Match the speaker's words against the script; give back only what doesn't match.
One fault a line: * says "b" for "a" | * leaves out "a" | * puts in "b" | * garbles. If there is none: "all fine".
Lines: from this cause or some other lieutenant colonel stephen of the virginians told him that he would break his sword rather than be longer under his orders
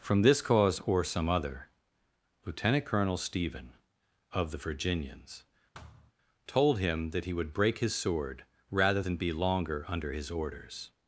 all fine